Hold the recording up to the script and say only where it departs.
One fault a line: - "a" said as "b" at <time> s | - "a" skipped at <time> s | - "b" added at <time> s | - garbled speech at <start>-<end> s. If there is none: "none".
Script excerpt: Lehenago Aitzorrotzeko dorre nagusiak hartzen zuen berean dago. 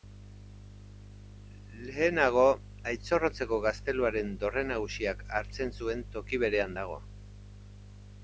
- "gazteluaren" added at 3.7 s
- "toki" added at 6.2 s